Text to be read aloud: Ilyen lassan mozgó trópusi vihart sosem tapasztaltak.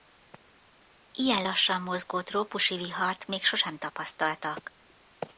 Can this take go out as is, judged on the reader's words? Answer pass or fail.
fail